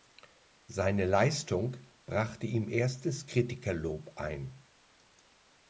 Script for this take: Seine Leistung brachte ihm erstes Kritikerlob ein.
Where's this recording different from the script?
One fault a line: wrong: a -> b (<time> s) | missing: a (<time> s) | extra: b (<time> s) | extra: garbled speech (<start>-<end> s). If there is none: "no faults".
no faults